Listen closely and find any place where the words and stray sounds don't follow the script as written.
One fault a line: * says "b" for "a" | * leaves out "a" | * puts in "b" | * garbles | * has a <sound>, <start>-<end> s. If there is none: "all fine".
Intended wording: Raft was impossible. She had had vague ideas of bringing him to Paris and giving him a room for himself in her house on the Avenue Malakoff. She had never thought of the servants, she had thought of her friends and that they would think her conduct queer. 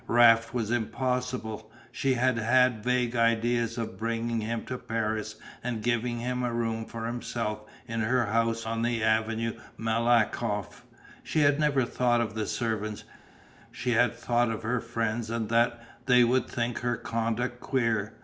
all fine